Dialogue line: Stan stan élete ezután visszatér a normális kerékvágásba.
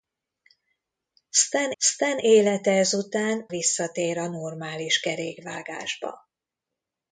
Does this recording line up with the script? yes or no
yes